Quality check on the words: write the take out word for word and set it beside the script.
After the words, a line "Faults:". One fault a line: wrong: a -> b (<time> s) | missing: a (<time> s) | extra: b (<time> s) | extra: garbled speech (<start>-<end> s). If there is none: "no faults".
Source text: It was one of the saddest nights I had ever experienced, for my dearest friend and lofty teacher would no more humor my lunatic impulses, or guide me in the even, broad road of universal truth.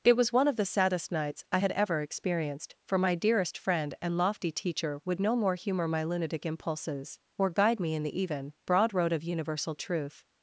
It was one of the saddest nights I had ever experienced, for my dearest friend and lofty teacher would no more humor my lunatic impulses, or guide me in the even, broad road of universal truth.
Faults:
no faults